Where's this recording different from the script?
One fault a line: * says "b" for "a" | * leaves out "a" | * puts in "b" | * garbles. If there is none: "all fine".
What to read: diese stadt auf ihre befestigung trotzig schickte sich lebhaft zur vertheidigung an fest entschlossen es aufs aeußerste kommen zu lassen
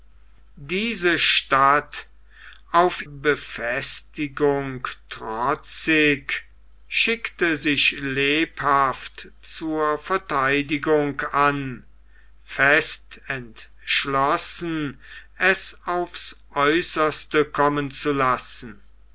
* leaves out "ihre"